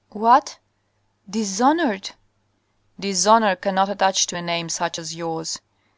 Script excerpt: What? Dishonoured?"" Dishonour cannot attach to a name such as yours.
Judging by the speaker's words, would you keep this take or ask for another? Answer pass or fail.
pass